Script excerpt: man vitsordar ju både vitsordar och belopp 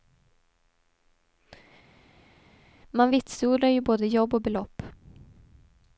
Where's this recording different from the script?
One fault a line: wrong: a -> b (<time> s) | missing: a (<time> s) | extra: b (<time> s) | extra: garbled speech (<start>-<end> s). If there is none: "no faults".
wrong: vitsordar -> jobb (4.1 s)